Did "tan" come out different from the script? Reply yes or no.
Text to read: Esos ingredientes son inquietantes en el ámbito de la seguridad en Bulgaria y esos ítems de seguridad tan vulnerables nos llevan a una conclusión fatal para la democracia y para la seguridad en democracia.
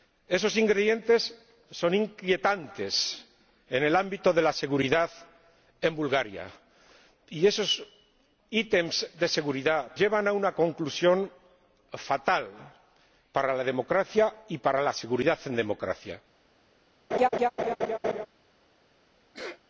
yes